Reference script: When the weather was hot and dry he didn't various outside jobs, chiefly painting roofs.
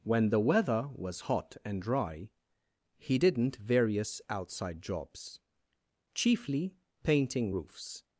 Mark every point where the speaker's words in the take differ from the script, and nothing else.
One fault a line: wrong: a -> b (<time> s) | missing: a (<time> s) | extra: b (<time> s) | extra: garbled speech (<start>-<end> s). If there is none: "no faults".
no faults